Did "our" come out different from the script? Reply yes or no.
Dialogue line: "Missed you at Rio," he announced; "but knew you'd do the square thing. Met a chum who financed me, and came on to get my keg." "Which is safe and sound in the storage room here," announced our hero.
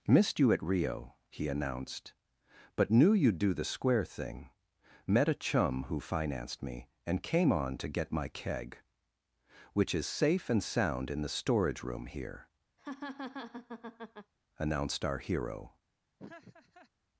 no